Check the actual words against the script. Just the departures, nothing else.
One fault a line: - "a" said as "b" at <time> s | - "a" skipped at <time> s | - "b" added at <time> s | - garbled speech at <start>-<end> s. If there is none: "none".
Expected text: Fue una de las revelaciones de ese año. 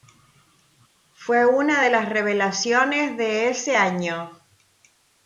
none